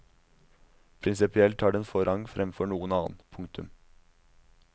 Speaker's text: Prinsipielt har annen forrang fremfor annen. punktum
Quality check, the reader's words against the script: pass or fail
fail